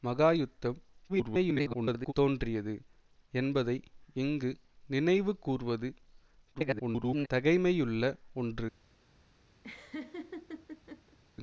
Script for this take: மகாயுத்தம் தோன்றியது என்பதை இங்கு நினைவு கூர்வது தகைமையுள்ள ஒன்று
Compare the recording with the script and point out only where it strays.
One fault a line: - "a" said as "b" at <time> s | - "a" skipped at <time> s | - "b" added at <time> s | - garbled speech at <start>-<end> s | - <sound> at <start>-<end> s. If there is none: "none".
- garbled speech at 1.1-2.1 s
- garbled speech at 6.5-7.3 s
- laugh at 9.6-11.2 s